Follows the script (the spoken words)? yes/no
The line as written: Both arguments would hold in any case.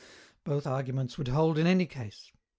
yes